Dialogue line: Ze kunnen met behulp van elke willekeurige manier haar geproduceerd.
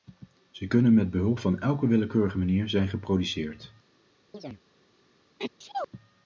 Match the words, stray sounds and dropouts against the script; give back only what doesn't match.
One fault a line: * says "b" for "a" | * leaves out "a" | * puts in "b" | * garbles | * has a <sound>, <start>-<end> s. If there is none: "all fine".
* says "zijn" for "haar"
* has a chirp, 4.3-4.6 s
* has a sneeze, 5.4-5.9 s